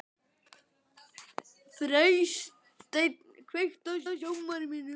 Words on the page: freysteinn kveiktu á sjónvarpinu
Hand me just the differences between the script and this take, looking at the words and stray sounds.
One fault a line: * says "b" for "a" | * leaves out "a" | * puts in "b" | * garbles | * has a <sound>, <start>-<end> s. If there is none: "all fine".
* puts in "á"